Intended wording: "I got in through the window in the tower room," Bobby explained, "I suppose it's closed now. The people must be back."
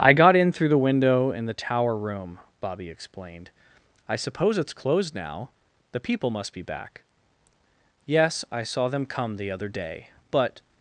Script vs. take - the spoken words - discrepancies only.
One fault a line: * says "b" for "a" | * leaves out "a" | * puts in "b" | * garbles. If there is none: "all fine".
* puts in "Yes I saw them come the other day but"